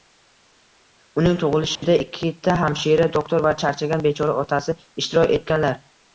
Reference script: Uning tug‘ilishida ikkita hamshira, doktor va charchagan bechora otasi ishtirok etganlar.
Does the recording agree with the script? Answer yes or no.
yes